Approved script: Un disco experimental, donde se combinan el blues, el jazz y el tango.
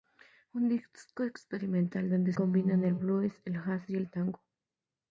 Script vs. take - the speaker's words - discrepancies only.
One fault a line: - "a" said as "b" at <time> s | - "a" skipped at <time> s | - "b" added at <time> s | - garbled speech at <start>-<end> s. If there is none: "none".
- "se" skipped at 2.3 s